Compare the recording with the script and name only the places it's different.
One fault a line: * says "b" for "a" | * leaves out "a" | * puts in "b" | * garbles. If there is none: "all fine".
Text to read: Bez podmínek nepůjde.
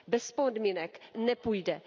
all fine